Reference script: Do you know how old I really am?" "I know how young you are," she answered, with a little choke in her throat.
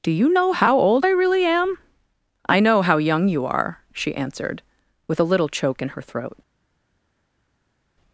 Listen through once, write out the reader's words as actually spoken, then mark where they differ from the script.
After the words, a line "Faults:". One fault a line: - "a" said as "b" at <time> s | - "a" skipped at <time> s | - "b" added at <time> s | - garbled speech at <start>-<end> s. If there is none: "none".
Do you know how old I really am?" "I know how young you are," she answered, with a little choke in her throat.
Faults:
none